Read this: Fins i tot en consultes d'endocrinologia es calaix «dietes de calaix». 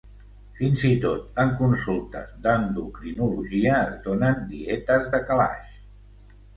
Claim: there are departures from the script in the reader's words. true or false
true